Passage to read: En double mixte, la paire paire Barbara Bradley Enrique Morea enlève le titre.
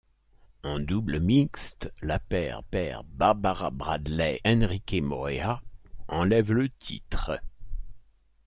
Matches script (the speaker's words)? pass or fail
pass